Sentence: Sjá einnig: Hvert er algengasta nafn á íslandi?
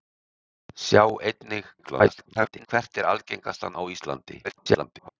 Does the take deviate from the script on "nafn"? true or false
true